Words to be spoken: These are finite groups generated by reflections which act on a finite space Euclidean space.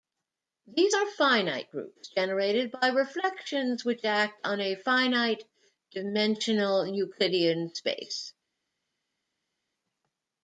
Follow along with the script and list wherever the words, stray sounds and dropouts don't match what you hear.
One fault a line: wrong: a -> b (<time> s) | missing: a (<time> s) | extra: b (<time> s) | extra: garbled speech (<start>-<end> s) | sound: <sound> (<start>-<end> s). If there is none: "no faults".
wrong: space -> dimensional (5.9 s)